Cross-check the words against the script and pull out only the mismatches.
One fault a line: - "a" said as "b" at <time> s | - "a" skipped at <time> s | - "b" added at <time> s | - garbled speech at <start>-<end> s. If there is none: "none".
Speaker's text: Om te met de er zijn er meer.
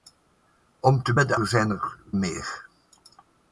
none